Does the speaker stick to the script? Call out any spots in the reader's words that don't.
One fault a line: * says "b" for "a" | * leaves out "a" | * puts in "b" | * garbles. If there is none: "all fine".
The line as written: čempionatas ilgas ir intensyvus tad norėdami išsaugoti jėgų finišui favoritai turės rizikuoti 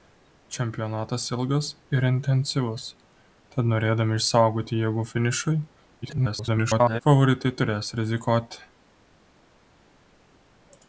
* garbles